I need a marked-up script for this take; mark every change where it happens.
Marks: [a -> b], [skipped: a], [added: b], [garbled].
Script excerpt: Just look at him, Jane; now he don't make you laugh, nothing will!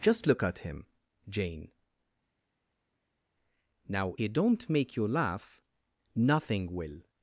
Just look at him, Jane; now he don't make you laugh, nothing will!